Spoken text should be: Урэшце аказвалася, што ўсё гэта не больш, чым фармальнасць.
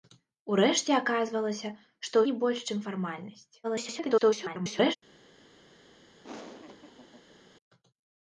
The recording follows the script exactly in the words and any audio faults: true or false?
false